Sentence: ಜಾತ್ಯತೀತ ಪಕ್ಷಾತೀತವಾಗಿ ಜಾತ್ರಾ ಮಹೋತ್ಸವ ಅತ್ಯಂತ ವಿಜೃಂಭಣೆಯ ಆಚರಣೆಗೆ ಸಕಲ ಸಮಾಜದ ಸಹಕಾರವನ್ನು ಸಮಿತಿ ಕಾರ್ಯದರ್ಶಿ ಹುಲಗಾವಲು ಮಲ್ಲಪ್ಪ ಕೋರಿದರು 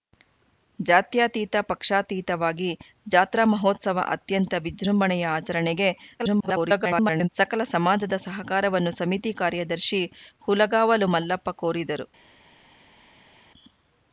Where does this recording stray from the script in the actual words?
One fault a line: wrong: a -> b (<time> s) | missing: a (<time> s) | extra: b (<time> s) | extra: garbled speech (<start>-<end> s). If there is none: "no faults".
extra: garbled speech (6.2-7.3 s)